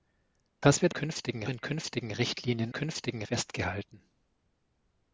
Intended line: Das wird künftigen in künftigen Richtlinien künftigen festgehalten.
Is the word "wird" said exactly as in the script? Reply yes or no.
yes